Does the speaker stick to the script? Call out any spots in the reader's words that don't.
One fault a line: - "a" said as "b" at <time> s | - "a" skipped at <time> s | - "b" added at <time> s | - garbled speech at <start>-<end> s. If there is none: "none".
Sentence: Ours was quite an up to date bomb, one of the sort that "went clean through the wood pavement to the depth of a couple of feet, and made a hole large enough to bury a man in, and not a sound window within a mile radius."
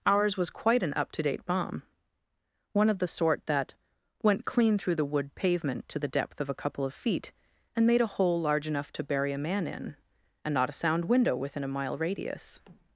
none